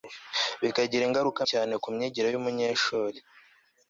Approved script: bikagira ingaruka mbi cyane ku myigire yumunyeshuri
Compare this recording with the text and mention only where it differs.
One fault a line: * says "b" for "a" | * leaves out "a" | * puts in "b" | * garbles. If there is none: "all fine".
* leaves out "mbi"